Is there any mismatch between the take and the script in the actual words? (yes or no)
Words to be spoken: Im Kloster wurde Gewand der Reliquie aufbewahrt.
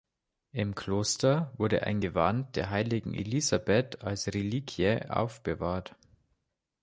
yes